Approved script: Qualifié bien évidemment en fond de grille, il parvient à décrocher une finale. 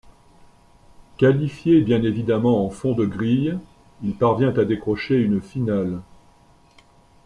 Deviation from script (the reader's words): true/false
false